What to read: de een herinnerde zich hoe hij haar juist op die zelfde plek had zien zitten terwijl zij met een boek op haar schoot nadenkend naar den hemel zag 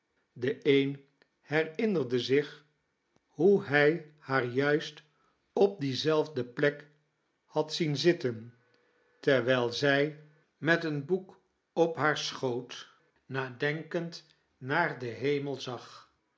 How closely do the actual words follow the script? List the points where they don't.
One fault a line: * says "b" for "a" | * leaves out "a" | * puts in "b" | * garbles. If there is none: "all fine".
all fine